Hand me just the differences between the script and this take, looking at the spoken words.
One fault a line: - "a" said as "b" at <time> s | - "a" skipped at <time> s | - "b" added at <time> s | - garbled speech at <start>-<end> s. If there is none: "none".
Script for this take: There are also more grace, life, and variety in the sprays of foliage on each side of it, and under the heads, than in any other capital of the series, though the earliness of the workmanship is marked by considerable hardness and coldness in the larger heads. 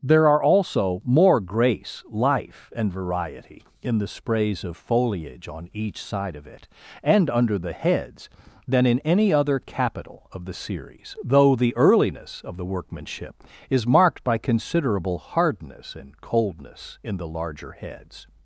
none